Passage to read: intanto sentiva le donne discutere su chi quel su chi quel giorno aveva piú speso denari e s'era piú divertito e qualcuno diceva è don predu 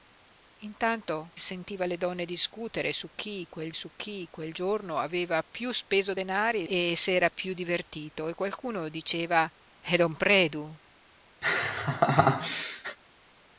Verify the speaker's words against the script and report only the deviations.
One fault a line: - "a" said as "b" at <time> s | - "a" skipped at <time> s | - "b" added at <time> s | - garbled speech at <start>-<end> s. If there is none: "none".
none